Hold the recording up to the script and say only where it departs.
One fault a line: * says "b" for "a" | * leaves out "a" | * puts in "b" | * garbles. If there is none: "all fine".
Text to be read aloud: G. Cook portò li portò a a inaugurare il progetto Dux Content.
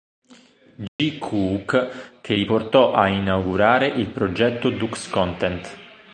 * says "che" for "portò"
* leaves out "a"